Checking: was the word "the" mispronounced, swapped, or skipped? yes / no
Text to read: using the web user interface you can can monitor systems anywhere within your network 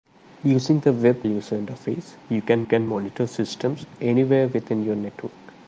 no